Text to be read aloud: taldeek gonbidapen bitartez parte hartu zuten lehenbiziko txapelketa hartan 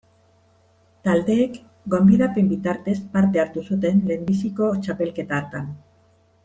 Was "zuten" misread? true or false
false